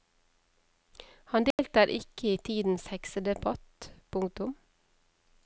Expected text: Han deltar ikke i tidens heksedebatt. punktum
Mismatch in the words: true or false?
false